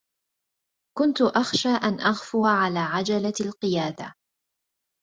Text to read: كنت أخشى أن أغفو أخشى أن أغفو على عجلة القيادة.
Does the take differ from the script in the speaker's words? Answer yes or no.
yes